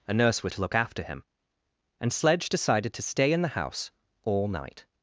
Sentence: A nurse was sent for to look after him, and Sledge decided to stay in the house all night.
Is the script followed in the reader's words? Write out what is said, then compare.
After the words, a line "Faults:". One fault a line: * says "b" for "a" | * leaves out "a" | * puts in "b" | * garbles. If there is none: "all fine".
A nurse was to look after him, and Sledge decided to stay in the house all night.
Faults:
* leaves out "sent for"